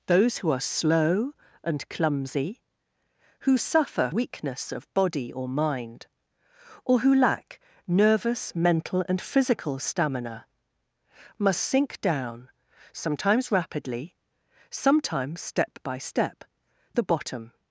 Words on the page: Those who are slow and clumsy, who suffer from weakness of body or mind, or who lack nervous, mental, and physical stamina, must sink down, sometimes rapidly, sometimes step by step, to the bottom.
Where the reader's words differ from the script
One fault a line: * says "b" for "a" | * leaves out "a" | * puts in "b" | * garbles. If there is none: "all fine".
* leaves out "from"
* leaves out "to"